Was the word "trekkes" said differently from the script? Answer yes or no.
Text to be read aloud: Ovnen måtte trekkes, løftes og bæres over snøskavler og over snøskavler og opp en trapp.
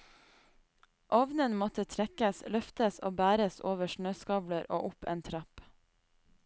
no